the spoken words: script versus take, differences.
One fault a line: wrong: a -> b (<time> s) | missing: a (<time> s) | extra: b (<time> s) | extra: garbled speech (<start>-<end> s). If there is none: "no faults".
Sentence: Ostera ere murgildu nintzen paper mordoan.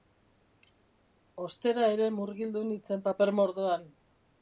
no faults